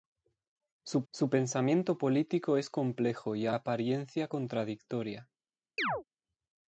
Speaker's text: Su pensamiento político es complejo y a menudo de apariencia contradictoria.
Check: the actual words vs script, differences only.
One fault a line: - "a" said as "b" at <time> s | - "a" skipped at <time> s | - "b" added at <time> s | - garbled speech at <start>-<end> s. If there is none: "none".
- "su" added at 1.1 s
- "menudo de" skipped at 3.5 s